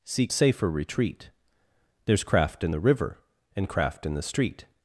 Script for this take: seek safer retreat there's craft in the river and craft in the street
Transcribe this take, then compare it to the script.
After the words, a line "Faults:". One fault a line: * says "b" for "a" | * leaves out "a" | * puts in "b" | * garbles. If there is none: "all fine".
seek safer retreat there's craft in the river and craft in the street
Faults:
all fine